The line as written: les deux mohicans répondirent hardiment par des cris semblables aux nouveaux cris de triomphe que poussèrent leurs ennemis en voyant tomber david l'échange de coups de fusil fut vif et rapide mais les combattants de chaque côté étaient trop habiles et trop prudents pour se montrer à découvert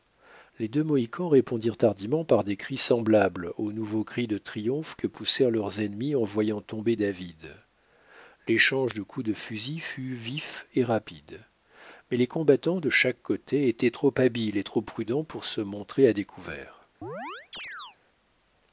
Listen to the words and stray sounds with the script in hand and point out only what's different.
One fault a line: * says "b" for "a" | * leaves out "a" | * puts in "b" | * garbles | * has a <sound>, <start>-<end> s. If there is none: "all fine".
* has a chirp, 17.0-18.0 s